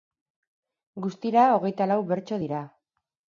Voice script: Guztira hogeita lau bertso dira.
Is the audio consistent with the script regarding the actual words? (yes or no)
yes